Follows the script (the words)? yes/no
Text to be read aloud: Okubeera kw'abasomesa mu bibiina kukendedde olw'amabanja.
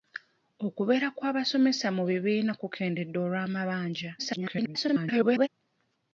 no